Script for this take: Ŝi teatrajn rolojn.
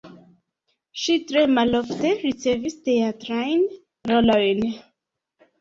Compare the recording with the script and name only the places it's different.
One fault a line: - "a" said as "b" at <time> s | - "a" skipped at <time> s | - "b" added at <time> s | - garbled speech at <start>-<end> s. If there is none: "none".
- "tre malofte ricevis" added at 1.3 s